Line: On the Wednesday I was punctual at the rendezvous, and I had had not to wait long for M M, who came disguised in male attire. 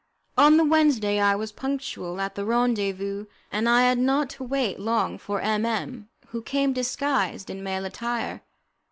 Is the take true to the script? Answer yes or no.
no